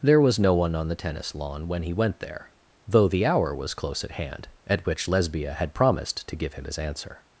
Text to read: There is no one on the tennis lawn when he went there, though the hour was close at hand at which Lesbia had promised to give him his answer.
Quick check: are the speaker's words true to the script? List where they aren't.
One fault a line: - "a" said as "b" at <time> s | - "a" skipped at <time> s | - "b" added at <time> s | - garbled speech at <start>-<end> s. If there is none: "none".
- "is" said as "was" at 0.2 s